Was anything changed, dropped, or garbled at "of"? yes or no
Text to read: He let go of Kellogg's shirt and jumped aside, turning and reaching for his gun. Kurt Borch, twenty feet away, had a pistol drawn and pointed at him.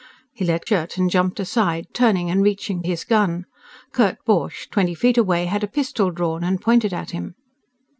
yes